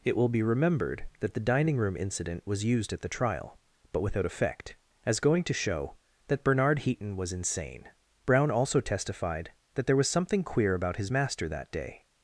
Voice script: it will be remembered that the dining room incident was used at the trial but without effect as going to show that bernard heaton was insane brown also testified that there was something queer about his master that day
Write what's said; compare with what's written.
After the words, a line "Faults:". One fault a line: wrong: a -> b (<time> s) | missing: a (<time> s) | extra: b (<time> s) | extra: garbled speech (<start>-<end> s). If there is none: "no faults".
it will be remembered that the dining room incident was used at the trial but without effect as going to show that bernard heaton was insane brown also testified that there was something queer about his master that day
Faults:
no faults